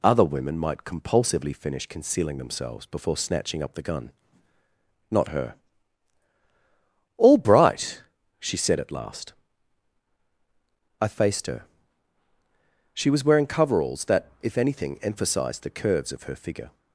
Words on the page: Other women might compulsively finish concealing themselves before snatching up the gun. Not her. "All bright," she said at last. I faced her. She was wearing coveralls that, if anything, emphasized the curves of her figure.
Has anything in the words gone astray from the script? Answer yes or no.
no